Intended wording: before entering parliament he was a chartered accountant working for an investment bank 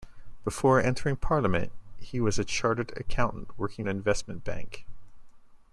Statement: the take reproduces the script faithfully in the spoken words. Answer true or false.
false